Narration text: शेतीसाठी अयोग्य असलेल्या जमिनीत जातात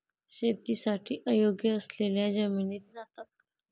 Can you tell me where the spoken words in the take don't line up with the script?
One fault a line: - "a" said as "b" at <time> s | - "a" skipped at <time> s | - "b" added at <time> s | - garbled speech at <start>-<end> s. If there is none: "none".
none